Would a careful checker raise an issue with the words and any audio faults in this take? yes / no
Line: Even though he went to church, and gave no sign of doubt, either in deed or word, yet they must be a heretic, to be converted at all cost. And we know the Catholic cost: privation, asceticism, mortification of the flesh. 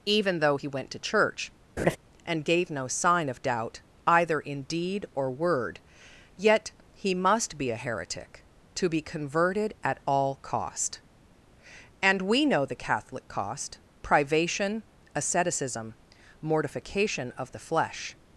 yes